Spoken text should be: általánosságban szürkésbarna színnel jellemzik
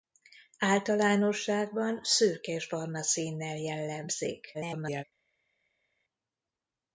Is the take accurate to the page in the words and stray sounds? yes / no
no